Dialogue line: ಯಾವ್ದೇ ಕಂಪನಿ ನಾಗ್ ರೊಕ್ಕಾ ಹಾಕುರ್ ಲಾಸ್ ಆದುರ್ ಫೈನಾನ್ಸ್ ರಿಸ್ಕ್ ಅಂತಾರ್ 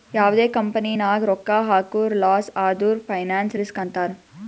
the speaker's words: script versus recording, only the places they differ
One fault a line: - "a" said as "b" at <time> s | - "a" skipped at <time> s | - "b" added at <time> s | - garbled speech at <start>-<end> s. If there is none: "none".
none